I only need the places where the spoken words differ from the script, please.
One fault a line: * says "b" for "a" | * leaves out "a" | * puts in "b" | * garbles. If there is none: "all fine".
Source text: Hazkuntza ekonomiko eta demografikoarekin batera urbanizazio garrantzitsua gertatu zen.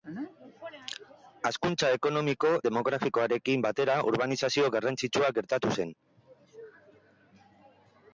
* leaves out "eta"